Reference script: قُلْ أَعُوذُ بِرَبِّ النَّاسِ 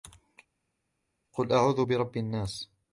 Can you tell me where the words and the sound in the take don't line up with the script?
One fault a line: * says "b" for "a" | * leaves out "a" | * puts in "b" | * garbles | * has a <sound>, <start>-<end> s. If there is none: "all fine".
all fine